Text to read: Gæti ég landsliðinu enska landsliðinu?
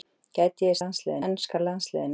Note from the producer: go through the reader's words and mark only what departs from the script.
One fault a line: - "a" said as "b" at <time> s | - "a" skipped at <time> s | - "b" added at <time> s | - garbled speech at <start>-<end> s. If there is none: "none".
none